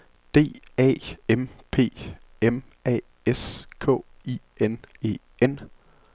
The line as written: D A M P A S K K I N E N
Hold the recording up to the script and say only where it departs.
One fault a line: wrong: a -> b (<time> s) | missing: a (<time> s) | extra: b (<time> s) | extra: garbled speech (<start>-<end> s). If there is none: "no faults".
extra: M (2.4 s)
missing: K (4.0 s)